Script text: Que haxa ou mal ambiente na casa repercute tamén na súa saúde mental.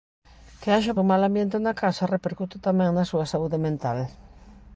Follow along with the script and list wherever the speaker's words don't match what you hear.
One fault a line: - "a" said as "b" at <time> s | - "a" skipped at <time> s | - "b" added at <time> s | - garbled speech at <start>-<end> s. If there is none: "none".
none